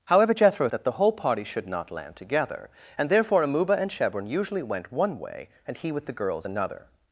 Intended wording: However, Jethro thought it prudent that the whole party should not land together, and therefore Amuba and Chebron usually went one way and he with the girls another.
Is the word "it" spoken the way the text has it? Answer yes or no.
no